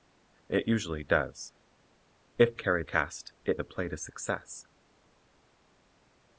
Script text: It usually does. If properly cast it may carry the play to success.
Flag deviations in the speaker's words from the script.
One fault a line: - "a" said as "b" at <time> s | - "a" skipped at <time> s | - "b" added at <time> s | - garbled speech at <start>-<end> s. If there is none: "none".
- "properly" said as "carry" at 2.5 s
- "may carry" skipped at 3.6 s